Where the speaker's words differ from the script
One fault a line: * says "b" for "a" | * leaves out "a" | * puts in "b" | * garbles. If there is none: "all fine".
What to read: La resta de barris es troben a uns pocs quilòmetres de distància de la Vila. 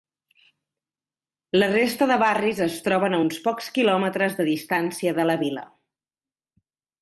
all fine